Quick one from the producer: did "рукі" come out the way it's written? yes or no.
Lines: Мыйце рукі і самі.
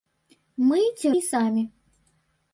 no